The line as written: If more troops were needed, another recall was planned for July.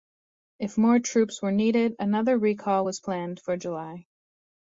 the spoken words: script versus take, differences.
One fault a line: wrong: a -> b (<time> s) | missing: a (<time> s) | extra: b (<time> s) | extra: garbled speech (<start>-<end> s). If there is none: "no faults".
no faults